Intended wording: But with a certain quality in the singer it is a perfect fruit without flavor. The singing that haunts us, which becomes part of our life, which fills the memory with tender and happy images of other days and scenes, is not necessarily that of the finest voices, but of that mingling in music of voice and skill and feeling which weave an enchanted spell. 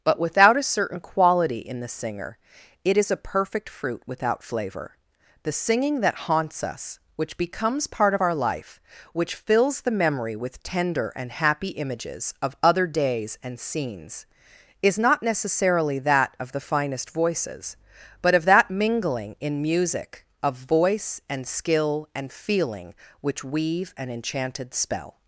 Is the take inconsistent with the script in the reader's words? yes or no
yes